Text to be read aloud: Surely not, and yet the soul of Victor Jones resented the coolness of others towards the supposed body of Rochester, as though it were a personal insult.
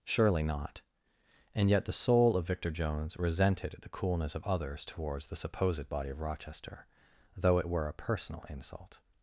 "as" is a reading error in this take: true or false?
true